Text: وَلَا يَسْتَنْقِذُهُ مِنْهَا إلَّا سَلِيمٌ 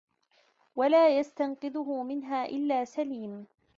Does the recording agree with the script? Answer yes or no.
yes